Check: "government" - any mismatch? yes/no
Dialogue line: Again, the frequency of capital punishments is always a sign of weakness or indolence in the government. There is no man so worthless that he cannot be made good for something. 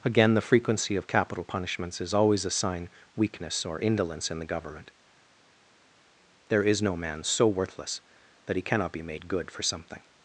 no